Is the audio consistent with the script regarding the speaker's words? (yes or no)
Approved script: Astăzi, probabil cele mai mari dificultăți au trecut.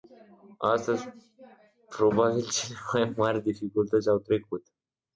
yes